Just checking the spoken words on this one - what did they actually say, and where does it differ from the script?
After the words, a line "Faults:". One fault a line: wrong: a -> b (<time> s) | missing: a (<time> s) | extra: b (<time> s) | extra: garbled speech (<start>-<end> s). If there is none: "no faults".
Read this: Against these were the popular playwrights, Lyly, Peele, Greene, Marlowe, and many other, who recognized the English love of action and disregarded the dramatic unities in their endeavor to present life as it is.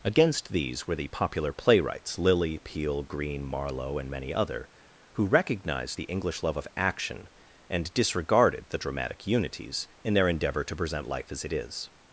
Against these were the popular playwrights, Lyly, Peele, Greene, Marlowe, and many other, who recognized the English love of action and disregarded the dramatic unities in their endeavor to present life as it is.
Faults:
no faults